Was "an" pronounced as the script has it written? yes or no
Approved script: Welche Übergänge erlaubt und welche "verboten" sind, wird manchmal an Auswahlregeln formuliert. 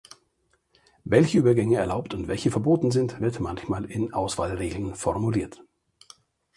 no